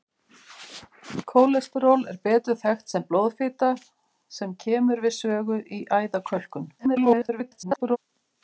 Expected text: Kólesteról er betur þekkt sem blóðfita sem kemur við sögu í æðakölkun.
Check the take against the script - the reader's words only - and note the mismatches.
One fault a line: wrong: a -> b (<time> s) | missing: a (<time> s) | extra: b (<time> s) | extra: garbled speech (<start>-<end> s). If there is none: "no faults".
extra: garbled speech (6.8-8.0 s)